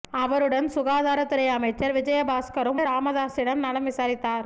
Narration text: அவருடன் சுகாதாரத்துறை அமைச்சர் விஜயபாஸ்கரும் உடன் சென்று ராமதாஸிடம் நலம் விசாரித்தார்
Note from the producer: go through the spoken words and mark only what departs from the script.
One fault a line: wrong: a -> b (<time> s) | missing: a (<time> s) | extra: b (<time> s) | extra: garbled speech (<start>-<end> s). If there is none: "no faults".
missing: உடன் சென்று (2.8 s)